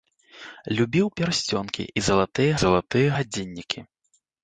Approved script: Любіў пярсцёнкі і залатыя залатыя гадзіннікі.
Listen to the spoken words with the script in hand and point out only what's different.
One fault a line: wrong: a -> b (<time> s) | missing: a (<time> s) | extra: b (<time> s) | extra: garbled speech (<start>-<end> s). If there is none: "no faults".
no faults